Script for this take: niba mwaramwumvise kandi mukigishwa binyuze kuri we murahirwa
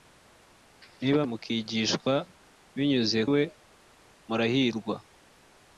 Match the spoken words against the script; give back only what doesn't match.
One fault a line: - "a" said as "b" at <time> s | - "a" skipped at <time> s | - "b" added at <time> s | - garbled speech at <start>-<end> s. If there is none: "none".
- "mwaramwumvise kandi" skipped at 1.2 s
- "kuri" skipped at 3.2 s